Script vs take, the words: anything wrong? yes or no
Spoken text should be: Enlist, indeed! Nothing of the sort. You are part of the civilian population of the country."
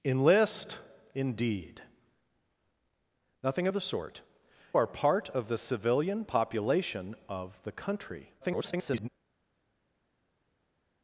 yes